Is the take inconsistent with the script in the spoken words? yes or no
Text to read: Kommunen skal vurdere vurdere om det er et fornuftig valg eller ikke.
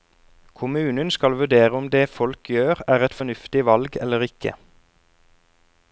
yes